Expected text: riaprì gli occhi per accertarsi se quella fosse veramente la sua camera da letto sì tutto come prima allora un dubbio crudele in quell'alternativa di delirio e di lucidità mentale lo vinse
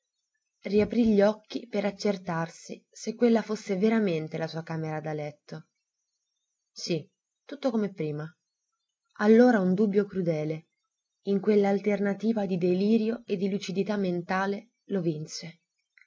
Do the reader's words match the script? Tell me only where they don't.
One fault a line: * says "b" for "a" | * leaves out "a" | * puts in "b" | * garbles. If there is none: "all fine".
all fine